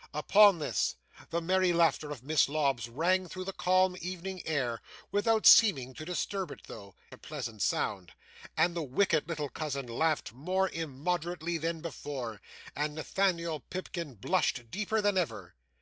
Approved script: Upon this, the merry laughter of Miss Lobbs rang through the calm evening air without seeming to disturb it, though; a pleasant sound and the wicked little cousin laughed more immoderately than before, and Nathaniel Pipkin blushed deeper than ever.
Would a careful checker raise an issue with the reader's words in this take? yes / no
no